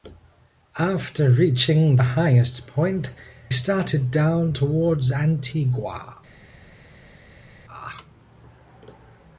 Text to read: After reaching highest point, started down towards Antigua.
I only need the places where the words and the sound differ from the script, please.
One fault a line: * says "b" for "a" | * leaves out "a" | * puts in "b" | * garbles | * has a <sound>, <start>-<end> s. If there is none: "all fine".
all fine